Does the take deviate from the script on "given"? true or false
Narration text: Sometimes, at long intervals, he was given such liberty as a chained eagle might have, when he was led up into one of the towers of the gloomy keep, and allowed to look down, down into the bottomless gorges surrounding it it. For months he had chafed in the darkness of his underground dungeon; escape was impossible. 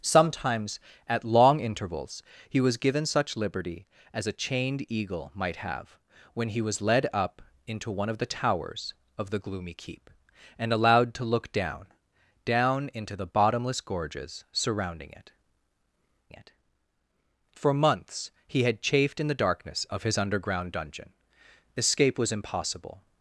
false